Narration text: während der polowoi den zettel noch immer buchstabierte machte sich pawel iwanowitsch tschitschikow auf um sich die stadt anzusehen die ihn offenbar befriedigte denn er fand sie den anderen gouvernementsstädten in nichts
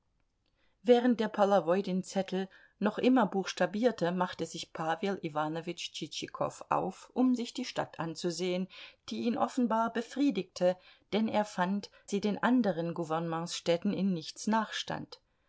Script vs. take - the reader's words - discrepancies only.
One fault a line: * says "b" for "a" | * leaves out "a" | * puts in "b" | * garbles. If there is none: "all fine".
all fine